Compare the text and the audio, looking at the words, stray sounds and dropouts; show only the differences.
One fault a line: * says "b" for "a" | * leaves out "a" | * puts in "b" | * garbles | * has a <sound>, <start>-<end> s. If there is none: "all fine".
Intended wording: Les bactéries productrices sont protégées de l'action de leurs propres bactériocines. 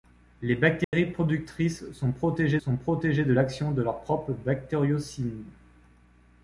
* has a dropout, 0.8-0.9 s
* puts in "sont protégées"